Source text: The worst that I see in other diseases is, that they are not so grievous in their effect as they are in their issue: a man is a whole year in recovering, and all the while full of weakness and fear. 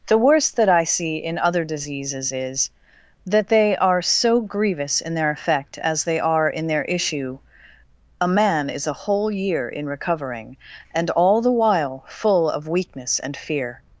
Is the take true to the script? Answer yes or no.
no